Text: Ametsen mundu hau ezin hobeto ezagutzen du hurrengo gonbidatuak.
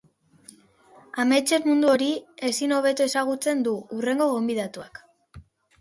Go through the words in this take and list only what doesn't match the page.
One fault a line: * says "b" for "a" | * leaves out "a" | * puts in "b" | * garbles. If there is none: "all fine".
* says "hori" for "hau"